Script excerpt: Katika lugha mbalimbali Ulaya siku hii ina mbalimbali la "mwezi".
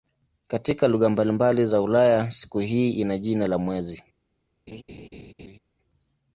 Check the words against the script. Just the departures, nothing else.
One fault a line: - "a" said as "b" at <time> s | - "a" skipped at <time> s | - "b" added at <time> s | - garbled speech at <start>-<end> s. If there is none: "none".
- "za" added at 1.6 s
- "mbalimbali" said as "jina" at 3.2 s